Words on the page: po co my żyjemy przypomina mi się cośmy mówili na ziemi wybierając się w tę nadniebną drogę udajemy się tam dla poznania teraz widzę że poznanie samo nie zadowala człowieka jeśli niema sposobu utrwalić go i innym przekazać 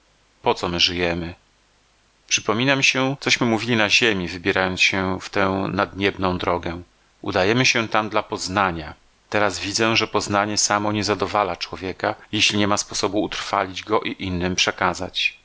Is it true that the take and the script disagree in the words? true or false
false